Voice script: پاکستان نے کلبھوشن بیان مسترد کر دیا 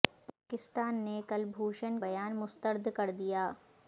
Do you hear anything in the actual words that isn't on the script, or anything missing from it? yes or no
no